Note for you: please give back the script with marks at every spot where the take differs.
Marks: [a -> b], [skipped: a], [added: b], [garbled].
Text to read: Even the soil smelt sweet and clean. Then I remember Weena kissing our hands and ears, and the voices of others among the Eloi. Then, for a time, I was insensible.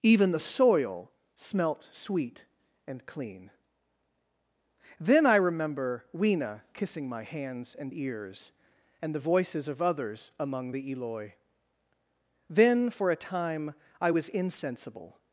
Even the soil smelt sweet and clean. Then I remember Weena kissing [our -> my] hands and ears, and the voices of others among the Eloi. Then, for a time, I was insensible.